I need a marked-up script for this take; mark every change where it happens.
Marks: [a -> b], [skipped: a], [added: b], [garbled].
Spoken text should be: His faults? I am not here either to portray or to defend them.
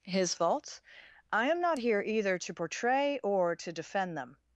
His faults? I am not here either to portray or to defend them.